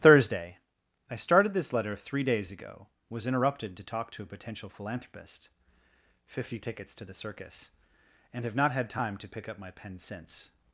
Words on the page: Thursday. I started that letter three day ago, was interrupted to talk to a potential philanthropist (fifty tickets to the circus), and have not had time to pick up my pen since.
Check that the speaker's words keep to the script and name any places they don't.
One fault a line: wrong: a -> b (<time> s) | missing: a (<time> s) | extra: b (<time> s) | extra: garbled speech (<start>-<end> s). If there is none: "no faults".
wrong: that -> this (1.5 s)
wrong: day -> days (2.2 s)